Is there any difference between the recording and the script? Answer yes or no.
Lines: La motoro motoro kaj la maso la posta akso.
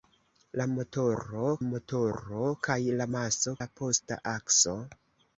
no